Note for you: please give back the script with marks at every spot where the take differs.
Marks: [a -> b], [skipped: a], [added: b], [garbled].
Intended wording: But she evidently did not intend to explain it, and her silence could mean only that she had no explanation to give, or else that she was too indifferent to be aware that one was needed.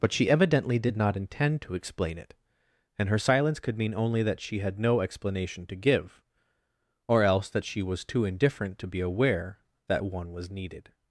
But she evidently did not intend to explain it, and her silence could mean only that she had no explanation to give, or else that she was too indifferent to be aware that one was needed.